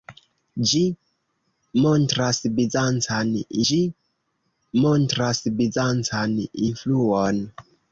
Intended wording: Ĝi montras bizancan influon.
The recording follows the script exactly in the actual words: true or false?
false